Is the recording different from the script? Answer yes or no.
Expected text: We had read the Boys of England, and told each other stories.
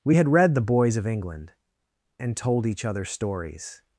no